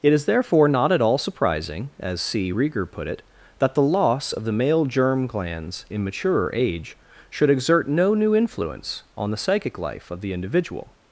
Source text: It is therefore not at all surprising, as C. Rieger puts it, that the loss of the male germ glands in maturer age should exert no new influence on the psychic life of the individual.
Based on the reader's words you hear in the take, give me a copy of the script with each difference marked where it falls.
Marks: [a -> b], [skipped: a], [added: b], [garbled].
It is therefore not at all surprising, as C. Rieger [puts -> put] it, that the loss of the male germ glands in maturer age should exert no new influence on the psychic life of the individual.